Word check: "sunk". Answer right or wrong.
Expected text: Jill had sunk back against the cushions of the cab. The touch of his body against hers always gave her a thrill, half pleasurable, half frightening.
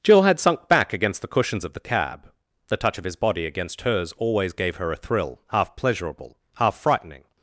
right